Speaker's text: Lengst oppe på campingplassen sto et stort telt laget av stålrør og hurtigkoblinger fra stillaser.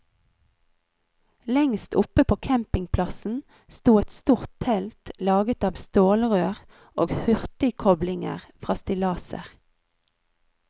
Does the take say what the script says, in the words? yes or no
yes